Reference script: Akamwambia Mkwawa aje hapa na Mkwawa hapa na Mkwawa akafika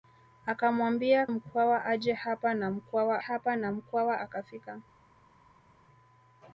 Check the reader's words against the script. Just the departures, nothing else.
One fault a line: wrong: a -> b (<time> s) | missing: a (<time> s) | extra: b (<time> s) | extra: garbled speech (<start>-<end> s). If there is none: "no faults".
no faults